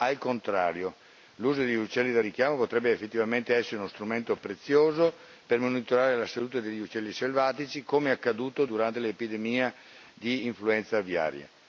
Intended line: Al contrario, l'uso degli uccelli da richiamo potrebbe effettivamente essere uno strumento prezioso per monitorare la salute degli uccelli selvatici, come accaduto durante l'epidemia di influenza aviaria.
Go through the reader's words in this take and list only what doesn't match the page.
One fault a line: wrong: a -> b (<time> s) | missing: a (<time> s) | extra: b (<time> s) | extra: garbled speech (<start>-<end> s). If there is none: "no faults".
no faults